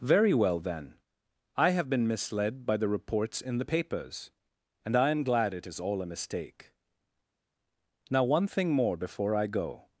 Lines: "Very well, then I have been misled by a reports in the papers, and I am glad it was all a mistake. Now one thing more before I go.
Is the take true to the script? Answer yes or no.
no